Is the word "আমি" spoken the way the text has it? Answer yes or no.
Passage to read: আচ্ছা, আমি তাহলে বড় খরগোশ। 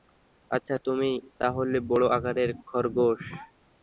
no